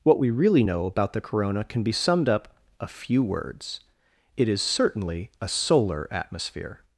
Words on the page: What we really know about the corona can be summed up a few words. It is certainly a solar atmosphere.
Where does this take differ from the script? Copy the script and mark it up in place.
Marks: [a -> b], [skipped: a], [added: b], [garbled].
What we really know about the corona can be summed up a few words. It is certainly a solar atmosphere.